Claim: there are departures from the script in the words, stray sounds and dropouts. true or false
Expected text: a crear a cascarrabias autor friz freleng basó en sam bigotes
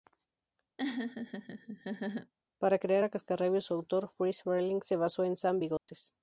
true